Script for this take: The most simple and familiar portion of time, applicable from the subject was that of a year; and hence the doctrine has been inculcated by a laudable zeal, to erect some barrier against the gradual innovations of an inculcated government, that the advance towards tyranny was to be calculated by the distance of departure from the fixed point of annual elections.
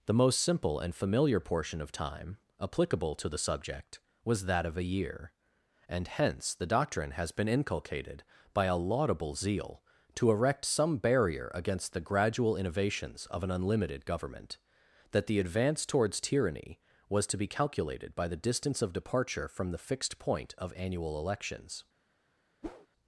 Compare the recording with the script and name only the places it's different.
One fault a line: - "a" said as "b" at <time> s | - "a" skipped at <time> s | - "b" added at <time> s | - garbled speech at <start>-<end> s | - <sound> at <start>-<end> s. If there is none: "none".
- "from" said as "to" at 3.1 s
- "inculcated" said as "unlimited" at 13.5 s
- whoosh at 22.6-22.9 s